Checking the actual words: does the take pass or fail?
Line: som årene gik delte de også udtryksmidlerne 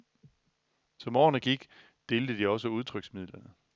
pass